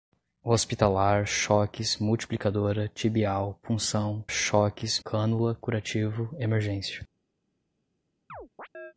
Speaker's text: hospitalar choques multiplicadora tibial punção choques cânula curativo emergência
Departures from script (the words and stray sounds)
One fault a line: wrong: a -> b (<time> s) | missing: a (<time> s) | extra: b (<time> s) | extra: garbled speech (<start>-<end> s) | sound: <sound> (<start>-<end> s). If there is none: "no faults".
sound: chirp (8.3-8.9 s)